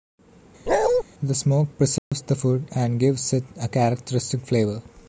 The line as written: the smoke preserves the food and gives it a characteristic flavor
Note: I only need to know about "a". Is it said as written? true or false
true